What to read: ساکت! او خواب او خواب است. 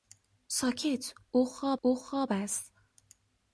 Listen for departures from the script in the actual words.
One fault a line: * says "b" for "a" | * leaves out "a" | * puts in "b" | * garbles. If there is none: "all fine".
all fine